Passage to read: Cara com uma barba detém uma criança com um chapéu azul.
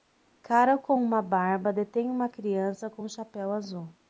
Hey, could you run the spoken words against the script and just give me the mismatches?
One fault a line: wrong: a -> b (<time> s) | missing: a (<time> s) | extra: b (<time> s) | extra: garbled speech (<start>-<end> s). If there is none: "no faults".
no faults